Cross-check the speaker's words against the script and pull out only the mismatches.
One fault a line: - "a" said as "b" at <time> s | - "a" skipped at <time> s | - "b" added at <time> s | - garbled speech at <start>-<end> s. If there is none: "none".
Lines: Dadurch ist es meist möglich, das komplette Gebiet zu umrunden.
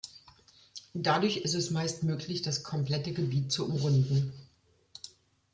none